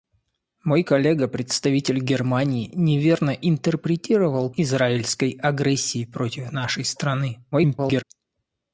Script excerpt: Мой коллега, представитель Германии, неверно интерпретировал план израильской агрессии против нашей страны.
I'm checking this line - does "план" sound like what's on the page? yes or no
no